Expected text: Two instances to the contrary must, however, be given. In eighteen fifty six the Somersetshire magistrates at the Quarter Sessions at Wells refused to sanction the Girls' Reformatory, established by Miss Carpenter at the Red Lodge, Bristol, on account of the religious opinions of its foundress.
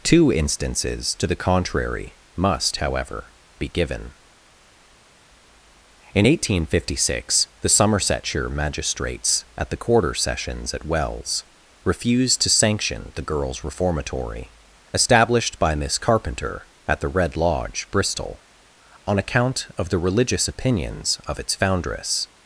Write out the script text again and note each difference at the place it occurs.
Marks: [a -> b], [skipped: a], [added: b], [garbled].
Two instances to the contrary must, however, be given. In eighteen fifty six the Somersetshire magistrates at the Quarter Sessions at Wells refused to sanction the Girls' Reformatory, established by Miss Carpenter at the Red Lodge, Bristol, on account of the religious opinions of its foundress.